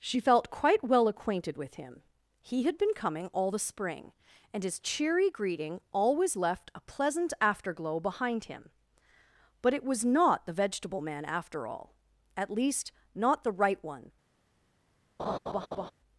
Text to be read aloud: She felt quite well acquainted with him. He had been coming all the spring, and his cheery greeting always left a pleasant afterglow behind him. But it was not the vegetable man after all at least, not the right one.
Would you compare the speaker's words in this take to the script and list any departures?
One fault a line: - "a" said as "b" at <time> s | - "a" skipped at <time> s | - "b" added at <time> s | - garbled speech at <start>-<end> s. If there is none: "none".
none